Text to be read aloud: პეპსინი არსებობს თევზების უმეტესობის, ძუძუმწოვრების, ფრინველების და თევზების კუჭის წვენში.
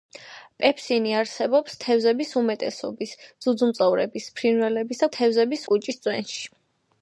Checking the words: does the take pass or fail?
pass